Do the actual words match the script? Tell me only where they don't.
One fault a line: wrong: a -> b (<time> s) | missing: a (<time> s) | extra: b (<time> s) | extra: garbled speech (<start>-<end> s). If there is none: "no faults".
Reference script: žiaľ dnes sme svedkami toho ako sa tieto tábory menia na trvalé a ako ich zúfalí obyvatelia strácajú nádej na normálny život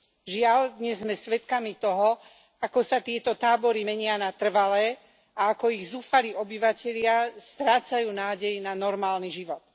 no faults